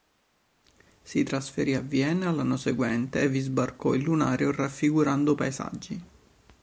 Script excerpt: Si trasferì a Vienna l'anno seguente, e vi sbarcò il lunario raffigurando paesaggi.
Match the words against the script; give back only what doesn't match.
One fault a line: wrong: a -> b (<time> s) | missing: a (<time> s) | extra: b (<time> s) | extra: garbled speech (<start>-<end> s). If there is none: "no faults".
no faults